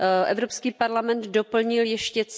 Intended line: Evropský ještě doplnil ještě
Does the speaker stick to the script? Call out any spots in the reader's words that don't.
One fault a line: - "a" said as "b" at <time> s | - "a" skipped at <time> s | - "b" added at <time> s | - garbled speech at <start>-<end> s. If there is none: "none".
- "ještě" said as "parlament" at 0.7 s